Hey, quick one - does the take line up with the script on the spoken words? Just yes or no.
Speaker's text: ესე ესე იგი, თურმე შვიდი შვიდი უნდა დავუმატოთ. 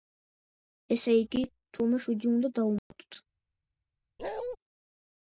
no